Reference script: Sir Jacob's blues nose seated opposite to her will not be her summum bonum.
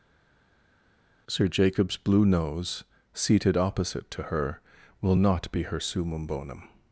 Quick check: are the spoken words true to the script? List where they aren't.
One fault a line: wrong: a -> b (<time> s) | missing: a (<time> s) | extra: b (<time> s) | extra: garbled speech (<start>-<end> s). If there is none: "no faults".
wrong: blues -> blue (2.0 s)